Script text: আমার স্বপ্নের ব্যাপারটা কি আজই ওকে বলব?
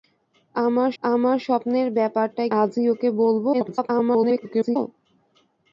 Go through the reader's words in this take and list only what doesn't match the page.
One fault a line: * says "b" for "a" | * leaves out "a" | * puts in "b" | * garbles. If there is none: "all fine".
* puts in "আমার"
* leaves out "কি"
* garbles